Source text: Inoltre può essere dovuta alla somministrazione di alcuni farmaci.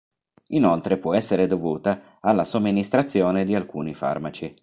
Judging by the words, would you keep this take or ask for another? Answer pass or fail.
pass